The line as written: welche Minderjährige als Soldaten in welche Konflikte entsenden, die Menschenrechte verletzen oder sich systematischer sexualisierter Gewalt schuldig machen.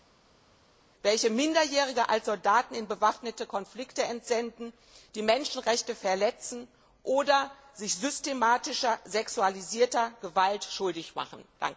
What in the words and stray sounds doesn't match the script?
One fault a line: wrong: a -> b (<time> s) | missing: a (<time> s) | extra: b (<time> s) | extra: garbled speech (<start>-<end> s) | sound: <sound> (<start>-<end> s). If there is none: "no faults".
wrong: welche -> bewaffnete (2.9 s)